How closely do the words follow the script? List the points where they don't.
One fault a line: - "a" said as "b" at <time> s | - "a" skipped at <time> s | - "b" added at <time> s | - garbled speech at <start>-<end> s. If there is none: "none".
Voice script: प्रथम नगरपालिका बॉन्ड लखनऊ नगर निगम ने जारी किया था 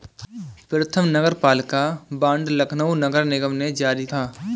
- "किया" skipped at 4.0 s